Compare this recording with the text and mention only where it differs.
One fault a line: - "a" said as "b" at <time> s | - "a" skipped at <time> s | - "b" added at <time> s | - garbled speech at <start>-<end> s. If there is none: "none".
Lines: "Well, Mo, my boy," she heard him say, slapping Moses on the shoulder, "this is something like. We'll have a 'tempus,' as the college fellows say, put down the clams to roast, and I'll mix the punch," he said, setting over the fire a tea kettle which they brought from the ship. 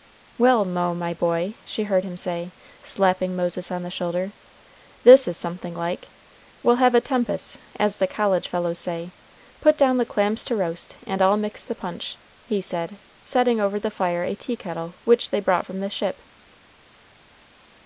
none